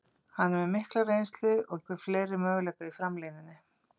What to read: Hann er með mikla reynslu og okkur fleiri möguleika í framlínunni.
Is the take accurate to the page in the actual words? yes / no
yes